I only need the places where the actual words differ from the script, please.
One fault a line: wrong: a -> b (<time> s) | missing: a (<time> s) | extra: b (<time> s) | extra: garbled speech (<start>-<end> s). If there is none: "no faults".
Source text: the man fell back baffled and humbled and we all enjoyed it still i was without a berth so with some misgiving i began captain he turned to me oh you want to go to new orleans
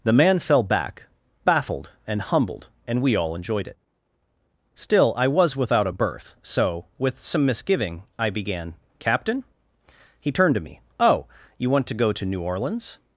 no faults